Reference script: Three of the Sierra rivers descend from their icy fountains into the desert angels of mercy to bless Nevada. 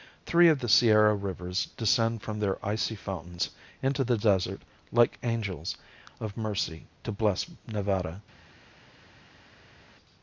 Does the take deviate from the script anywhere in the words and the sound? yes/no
yes